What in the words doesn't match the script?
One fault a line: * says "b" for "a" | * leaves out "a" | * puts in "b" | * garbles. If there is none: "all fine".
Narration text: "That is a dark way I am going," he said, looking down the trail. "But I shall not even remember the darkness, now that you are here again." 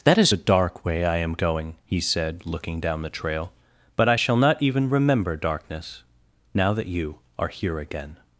* leaves out "the"